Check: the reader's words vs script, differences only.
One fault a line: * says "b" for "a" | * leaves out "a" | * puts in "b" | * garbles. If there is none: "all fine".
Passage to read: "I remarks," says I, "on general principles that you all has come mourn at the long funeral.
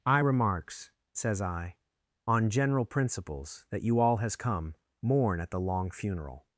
all fine